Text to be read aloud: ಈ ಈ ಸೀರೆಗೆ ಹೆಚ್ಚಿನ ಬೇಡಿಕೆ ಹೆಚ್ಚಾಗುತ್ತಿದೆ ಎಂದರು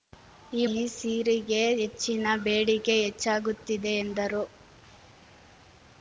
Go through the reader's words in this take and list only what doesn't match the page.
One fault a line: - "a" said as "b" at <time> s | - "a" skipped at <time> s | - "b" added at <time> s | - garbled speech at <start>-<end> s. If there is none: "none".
none